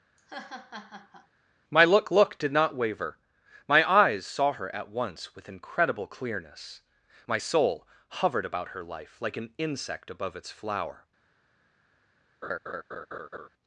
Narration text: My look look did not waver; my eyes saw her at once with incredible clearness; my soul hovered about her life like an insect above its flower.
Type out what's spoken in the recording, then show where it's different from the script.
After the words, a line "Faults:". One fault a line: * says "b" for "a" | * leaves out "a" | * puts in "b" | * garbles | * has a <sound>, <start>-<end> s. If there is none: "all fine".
My look look did not waver; my eyes saw her at once with incredible clearness; my soul hovered about her life like an insect above its flower.
Faults:
* has a laugh, 0.2-1.3 s
* has a laugh, 12.4-13.5 s